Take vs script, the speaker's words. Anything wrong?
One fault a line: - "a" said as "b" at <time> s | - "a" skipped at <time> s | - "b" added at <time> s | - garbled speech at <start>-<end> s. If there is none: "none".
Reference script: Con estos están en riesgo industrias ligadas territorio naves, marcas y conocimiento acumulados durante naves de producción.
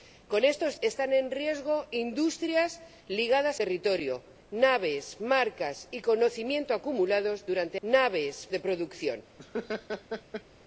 none